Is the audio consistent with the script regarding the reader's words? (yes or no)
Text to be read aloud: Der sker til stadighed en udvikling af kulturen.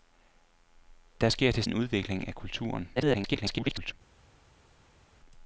no